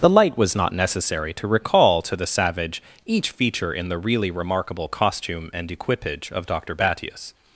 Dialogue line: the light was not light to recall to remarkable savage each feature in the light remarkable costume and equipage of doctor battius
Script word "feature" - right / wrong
right